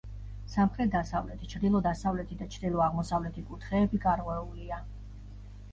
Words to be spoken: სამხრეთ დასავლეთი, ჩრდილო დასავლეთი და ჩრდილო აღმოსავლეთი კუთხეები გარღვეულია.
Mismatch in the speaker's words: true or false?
false